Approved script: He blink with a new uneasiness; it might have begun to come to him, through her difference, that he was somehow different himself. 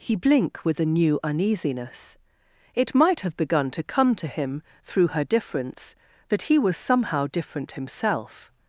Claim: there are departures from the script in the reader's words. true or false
false